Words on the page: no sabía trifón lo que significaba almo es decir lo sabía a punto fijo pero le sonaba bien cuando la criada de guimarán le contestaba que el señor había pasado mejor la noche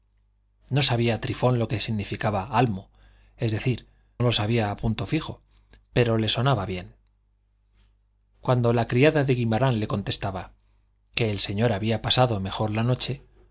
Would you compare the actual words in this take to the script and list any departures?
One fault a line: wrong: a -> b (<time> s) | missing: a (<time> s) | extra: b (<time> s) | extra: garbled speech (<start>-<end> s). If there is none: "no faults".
no faults